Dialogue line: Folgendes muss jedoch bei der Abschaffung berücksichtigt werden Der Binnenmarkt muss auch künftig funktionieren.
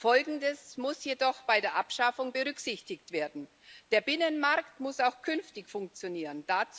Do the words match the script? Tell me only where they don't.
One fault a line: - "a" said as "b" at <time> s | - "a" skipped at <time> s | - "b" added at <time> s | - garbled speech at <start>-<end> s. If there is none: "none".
none